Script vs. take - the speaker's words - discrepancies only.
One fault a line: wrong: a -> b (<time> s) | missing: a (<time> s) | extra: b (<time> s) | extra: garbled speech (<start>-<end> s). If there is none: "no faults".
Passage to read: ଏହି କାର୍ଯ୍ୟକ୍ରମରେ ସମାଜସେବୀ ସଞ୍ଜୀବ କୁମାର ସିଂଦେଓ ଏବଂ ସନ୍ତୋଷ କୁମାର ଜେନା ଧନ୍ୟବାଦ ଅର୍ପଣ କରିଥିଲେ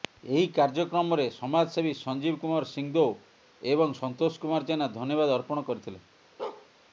no faults